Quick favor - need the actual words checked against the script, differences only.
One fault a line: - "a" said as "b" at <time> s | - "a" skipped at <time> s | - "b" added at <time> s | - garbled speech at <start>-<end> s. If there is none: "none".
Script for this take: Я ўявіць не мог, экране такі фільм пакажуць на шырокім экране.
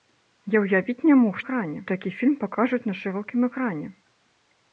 none